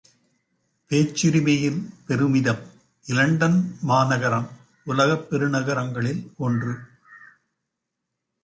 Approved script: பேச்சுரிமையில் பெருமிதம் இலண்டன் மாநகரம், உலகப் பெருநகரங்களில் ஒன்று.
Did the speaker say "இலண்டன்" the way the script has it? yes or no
yes